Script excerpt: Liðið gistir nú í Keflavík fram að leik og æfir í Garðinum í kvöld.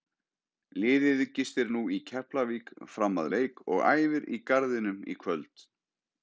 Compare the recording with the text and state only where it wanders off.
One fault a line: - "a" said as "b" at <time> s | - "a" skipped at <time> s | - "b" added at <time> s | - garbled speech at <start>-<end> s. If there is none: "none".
none